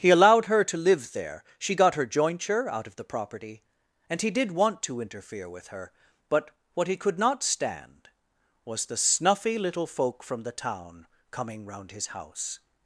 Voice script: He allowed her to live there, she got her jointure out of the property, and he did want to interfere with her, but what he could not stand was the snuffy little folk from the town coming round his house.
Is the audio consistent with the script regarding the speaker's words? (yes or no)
yes